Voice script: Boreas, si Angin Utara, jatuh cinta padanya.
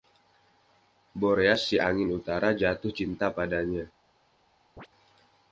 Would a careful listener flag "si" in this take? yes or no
no